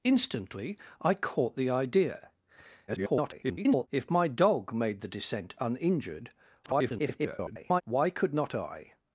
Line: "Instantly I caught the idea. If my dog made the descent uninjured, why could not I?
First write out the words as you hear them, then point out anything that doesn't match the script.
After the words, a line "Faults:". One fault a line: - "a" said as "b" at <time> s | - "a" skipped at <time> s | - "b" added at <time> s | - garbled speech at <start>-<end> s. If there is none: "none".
"Instantly I caught the idea. [garbled] If my dog made the descent uninjured, [garbled] why could not I?
Faults:
- garbled speech at 2.9-3.9 s
- garbled speech at 6.6-7.8 s